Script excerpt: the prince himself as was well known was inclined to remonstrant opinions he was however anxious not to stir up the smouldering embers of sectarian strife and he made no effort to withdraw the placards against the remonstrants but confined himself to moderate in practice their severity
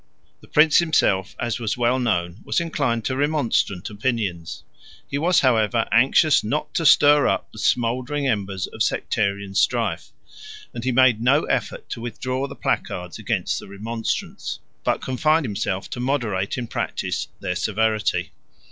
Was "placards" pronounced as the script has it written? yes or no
yes